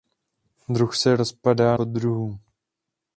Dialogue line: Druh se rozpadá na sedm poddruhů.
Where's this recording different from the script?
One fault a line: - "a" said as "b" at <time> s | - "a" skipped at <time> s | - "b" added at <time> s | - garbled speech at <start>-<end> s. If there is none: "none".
- "na sedm" skipped at 1.8 s